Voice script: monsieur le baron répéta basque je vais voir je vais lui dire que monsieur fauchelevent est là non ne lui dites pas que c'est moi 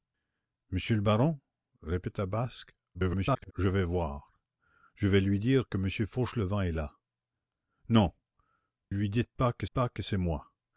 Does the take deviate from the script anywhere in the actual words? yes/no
yes